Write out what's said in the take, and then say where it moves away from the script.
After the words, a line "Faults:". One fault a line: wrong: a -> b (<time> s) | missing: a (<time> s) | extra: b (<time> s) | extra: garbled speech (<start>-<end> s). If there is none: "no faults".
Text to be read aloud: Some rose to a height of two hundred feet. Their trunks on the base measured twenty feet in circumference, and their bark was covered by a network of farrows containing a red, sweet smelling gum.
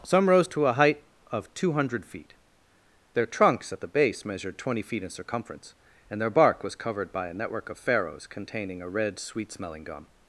Some rose to a height of two hundred feet. Their trunks at the base measured twenty feet in circumference, and their bark was covered by a network of farrows containing a red, sweet smelling gum.
Faults:
wrong: on -> at (3.7 s)